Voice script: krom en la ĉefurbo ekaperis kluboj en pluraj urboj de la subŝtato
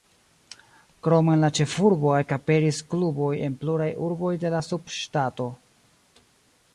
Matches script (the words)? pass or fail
pass